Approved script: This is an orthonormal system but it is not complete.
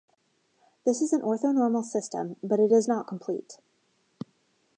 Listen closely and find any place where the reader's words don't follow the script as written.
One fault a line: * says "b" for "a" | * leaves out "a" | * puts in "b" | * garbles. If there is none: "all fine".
all fine